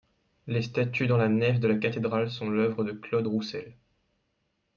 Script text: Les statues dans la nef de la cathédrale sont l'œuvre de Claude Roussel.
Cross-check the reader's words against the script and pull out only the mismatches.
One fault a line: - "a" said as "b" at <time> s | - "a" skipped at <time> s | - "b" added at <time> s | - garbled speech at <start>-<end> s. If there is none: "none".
none